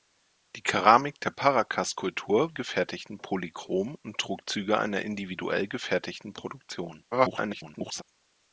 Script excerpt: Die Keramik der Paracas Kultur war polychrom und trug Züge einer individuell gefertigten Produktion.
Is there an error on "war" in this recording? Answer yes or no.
yes